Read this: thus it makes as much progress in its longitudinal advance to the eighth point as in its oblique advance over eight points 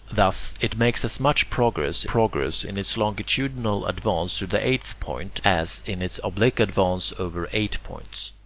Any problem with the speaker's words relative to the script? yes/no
yes